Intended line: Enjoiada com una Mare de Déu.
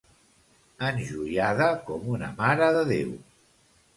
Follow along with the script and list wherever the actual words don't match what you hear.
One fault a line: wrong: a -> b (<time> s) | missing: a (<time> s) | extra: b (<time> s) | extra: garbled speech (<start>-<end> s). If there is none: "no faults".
no faults